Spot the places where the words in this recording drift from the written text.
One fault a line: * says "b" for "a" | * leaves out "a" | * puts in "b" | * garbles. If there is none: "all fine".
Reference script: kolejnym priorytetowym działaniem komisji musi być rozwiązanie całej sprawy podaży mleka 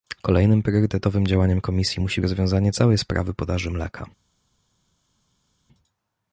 * leaves out "być"